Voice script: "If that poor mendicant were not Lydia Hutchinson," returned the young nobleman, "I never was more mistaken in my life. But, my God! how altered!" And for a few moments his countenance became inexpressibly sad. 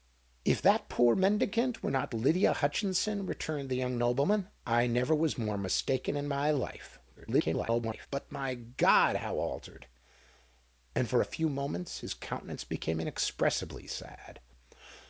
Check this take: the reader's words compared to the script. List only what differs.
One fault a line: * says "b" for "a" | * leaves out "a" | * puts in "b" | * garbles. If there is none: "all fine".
* garbles